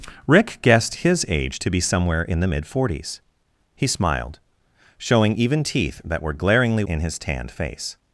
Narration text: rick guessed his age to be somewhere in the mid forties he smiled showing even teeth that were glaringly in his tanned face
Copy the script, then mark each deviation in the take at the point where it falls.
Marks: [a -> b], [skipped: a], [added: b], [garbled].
rick guessed his age to be somewhere in the mid forties he smiled showing even teeth that were glaringly in his tanned face